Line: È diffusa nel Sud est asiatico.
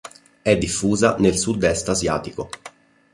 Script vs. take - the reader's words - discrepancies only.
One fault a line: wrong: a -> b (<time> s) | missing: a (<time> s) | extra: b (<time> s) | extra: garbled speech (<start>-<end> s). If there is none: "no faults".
no faults